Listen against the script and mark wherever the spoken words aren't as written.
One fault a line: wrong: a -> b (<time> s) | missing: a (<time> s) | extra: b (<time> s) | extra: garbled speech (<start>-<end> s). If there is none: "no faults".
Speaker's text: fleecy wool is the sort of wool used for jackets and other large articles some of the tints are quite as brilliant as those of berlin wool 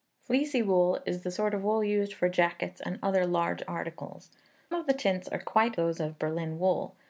missing: some (4.3 s)
missing: as brilliant as (5.8 s)